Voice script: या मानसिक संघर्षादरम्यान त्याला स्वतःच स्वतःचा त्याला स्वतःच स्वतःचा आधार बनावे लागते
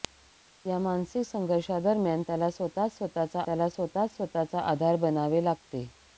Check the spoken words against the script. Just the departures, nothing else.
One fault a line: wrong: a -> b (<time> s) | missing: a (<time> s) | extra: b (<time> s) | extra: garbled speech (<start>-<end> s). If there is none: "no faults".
no faults